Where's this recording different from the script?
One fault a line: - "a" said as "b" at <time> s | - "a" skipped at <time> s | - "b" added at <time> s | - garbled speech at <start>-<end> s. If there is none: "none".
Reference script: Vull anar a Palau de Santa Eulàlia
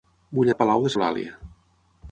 - "anar" skipped at 0.5 s
- "Santa" skipped at 0.9 s